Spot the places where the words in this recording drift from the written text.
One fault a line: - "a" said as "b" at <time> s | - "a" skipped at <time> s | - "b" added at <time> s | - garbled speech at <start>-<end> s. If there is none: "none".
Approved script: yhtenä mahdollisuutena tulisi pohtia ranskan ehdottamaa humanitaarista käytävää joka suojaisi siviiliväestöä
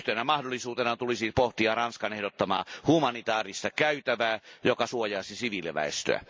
none